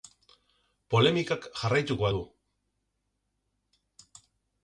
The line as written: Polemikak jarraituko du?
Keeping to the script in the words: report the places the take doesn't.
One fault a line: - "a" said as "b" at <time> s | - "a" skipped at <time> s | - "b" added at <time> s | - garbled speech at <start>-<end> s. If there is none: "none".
none